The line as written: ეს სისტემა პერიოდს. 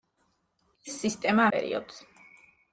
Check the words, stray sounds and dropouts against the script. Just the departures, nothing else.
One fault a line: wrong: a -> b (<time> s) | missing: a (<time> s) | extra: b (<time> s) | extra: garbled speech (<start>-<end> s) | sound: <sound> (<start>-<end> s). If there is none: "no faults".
no faults